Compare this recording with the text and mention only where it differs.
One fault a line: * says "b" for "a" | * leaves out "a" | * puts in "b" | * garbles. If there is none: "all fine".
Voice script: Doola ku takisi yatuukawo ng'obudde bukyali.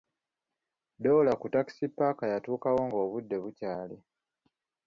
* puts in "paaka"